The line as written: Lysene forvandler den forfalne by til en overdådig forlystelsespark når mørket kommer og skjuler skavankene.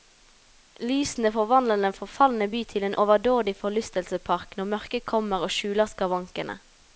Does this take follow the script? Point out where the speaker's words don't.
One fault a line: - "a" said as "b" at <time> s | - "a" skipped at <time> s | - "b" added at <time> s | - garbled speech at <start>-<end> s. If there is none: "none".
none